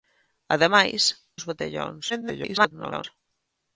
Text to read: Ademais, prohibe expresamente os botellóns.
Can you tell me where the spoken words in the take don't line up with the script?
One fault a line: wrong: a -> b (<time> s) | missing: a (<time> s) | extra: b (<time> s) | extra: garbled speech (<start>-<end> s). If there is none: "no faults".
missing: prohibe expresamente (1.0 s)
extra: garbled speech (2.1-3.0 s)